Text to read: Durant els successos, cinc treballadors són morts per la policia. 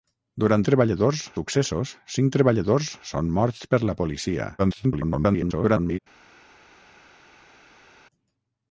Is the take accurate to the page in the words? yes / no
no